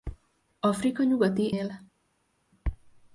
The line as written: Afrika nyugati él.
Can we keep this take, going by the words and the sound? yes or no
yes